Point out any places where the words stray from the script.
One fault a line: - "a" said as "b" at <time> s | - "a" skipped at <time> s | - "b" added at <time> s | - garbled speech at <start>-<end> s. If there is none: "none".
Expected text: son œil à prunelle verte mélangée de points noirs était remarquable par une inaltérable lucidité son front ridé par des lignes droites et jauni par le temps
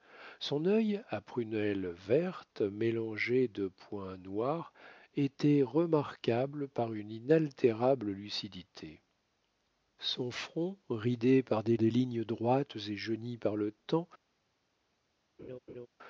- "des" added at 11.8 s